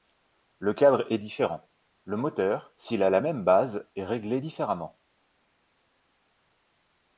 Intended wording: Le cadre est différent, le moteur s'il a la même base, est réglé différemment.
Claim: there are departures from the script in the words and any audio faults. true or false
false